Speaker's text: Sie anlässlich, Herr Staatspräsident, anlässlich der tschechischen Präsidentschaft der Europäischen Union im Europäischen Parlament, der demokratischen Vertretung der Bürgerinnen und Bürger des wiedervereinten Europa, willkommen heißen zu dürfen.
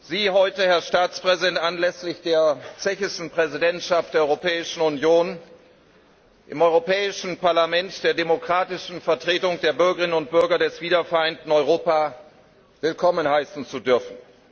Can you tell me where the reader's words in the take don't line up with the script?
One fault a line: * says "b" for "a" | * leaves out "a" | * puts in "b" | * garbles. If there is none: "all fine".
* says "heute" for "anlässlich"